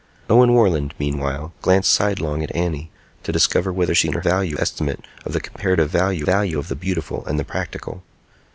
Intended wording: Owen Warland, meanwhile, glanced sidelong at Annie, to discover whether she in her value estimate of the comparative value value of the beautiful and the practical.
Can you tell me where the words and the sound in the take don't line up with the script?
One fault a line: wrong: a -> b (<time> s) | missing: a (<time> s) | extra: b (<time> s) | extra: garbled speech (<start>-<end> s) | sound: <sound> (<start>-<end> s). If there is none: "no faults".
no faults